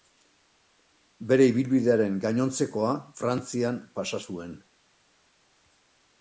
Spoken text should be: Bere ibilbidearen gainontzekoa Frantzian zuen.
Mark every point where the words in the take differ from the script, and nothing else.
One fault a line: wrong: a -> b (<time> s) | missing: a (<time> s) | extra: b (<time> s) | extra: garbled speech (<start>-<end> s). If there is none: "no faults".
extra: pasa (4.0 s)